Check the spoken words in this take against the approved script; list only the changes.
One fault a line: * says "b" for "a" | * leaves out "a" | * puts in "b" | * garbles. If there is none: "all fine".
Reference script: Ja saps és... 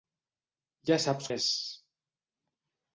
all fine